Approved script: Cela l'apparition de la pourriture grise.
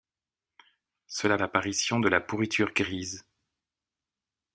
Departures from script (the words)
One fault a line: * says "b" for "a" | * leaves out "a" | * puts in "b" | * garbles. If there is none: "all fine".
all fine